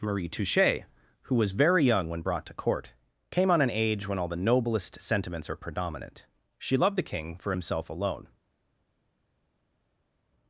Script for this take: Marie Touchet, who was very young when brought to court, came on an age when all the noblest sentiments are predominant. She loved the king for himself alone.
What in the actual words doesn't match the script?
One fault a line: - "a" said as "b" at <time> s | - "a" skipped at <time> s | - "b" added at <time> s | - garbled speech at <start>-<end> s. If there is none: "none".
none